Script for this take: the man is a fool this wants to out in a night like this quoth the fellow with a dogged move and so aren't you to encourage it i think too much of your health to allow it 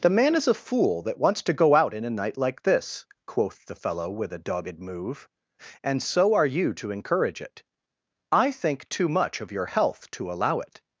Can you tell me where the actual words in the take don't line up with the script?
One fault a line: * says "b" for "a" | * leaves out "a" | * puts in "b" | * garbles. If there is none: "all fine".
* says "that" for "this"
* puts in "go"
* says "are" for "aren't"